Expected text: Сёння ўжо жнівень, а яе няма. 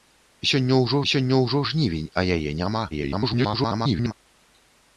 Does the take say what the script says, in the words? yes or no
no